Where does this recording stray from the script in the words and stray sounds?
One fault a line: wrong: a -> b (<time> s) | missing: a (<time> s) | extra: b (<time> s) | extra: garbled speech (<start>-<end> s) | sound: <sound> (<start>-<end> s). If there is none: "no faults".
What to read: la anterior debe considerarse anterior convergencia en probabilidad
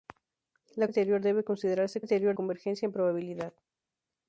no faults